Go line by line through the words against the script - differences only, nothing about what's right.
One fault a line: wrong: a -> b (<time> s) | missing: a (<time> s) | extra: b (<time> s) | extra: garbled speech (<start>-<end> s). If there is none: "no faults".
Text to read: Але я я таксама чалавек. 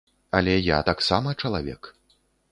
missing: я (0.8 s)